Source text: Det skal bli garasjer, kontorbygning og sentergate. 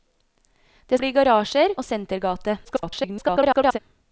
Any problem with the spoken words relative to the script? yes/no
yes